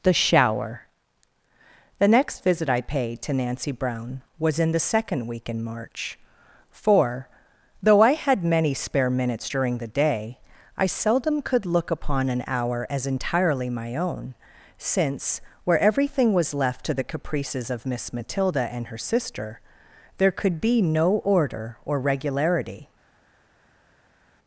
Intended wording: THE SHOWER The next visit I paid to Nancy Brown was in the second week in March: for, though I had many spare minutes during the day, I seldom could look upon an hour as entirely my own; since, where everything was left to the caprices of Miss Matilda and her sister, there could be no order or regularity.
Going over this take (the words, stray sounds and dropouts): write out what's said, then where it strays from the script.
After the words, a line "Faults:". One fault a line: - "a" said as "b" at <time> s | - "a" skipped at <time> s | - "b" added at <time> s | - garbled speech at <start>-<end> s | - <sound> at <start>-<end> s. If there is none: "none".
THE SHOWER The next visit I paid to Nancy Brown was in the second week in March: for, though I had many spare minutes during the day, I seldom could look upon an hour as entirely my own; since, where everything was left to the caprices of Miss Matilda and her sister, there could be no order or regularity.
Faults:
none